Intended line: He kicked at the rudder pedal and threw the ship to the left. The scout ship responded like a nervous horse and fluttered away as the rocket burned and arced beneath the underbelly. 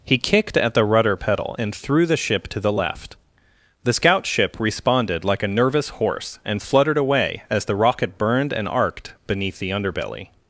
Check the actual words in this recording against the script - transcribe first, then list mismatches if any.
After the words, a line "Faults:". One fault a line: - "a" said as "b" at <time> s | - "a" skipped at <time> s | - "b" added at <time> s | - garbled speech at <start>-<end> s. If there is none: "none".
He kicked at the rudder pedal and threw the ship to the left. The scout ship responded like a nervous horse and fluttered away as the rocket burned and arced beneath the underbelly.
Faults:
none